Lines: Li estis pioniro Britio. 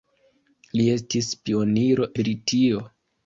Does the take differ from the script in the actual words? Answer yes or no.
no